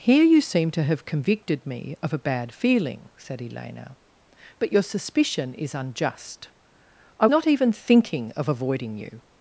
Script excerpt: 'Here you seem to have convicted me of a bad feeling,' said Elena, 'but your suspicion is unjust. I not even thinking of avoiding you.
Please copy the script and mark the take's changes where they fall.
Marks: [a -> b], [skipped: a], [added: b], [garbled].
'Here you seem to have convicted me of a bad feeling,' said Elena, 'but your suspicion is unjust. I not even thinking of avoiding you.